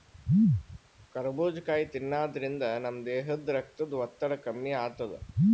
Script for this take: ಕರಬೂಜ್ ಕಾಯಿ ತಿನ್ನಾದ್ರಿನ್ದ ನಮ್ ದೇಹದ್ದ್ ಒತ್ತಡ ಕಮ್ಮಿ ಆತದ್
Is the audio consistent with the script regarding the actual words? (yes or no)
no